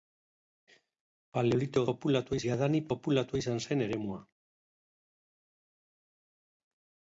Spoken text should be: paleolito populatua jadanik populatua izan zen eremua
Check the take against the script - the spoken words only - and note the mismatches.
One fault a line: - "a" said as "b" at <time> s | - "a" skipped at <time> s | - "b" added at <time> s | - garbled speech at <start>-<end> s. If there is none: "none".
none